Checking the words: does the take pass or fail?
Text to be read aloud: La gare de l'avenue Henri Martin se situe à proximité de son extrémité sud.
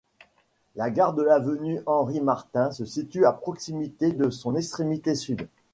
pass